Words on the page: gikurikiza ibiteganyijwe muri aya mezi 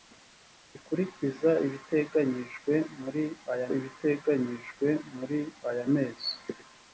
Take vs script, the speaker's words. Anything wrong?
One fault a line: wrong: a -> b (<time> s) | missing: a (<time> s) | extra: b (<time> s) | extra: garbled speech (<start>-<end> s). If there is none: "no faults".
extra: ibiteganyijwe muri aya (3.8 s)